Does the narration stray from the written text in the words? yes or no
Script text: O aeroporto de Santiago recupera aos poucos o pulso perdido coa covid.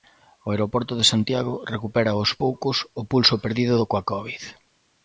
no